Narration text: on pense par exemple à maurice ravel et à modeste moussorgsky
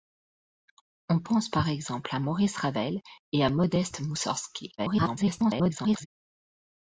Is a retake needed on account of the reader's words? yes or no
yes